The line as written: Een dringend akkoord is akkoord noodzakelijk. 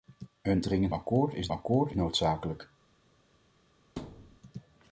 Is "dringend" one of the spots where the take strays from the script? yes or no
no